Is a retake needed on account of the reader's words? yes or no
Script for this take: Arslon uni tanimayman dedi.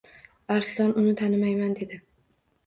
no